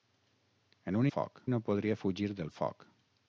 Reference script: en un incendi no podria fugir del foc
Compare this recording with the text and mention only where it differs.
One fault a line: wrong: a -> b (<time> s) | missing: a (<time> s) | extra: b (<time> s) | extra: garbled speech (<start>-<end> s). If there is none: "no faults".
wrong: incendi -> foc (1.1 s)